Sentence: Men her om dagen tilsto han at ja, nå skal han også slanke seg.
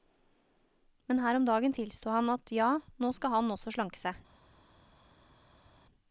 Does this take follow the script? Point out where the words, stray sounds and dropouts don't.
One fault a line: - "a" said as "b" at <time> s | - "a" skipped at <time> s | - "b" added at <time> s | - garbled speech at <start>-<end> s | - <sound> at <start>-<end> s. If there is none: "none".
none